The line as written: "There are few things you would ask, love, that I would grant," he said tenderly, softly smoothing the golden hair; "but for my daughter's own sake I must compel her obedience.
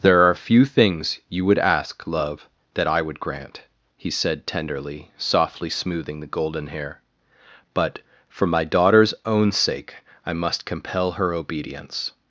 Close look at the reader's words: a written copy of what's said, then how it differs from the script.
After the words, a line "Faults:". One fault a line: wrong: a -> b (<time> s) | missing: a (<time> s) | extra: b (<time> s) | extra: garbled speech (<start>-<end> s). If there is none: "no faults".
"There are few things you would ask, love, that I would grant," he said tenderly, softly smoothing the golden hair; "but for my daughter's own sake I must compel her obedience.
Faults:
no faults